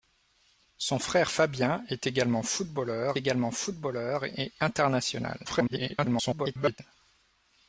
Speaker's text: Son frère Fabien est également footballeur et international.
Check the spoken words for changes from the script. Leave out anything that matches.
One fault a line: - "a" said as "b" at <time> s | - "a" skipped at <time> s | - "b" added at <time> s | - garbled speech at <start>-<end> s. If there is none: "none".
- "également footballeur" added at 3.2 s
- garbled speech at 5.4-6.8 s